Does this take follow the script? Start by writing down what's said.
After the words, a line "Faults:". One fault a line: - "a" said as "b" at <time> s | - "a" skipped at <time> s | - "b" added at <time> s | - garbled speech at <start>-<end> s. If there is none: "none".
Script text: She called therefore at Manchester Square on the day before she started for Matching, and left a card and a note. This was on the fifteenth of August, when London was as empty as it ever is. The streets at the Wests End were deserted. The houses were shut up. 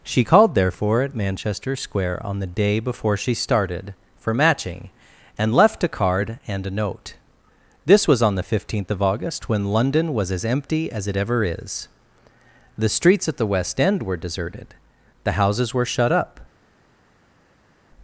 She called therefore at Manchester Square on the day before she started for Matching, and left a card and a note. This was on the fifteenth of August, when London was as empty as it ever is. The streets at the West End were deserted. The houses were shut up.
Faults:
- "Wests" said as "West" at 13.5 s